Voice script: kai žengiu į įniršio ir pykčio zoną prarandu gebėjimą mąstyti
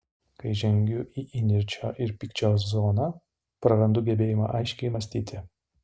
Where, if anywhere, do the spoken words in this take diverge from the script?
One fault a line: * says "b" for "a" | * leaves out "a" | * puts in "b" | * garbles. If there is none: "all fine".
* puts in "aiškiai"